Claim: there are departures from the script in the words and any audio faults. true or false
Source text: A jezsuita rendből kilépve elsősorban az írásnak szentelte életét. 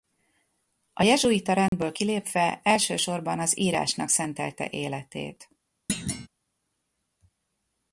true